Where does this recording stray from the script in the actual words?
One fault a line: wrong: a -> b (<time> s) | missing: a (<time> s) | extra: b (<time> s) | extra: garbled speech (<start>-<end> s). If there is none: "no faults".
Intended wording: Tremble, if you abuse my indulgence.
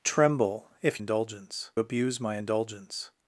wrong: you -> indulgence (1.0 s)